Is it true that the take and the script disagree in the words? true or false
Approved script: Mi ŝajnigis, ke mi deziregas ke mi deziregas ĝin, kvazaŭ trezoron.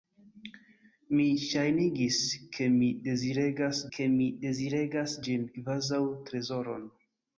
false